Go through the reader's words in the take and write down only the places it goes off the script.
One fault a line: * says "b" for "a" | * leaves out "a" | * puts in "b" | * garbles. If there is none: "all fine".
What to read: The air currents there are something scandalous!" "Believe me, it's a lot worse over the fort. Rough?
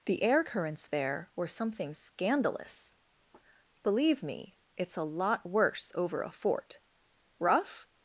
* says "were" for "are"
* says "a" for "the"